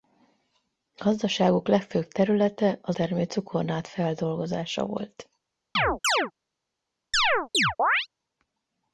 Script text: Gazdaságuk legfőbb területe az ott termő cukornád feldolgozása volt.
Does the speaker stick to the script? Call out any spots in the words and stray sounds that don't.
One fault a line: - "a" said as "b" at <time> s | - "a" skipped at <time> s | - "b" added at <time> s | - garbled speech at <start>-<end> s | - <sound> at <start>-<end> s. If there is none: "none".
- "ott" skipped at 3.0 s
- chirp at 5.8-6.3 s
- chirp at 7.1-8.1 s